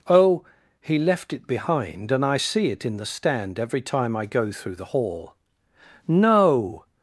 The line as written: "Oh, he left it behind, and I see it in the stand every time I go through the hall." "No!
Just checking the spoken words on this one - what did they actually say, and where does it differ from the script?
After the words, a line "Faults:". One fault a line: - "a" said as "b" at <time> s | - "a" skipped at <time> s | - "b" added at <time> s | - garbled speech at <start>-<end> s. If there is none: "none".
"Oh, he left it behind, and I see it in the stand every time I go through the hall." "No!
Faults:
none